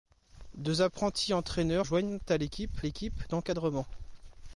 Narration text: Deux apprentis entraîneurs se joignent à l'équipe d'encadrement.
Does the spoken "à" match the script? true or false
true